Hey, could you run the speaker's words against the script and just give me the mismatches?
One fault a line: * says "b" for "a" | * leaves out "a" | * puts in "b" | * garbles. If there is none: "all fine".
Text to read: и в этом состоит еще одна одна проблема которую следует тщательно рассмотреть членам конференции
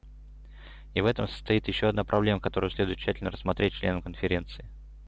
* leaves out "одна"